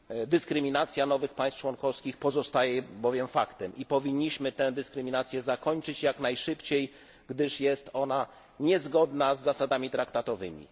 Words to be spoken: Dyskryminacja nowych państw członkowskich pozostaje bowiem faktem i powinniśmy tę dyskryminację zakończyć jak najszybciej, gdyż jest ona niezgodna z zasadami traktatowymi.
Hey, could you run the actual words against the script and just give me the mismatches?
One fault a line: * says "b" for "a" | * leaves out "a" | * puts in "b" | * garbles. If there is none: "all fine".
all fine